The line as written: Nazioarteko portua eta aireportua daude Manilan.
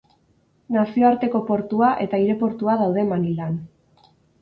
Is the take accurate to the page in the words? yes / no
yes